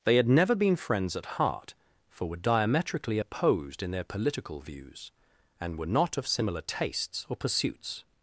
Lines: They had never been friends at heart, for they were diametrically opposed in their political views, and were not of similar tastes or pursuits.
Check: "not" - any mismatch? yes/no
no